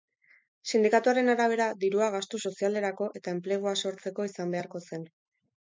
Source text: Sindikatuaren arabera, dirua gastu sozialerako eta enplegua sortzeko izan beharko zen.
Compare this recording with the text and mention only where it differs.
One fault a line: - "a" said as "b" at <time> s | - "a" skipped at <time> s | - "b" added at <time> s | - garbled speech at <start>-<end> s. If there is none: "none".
none